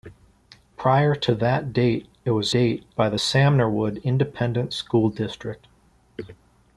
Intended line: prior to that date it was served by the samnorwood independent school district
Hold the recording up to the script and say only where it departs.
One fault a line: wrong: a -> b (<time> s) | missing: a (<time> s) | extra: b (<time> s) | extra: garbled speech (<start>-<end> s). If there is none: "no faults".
wrong: served -> date (2.5 s)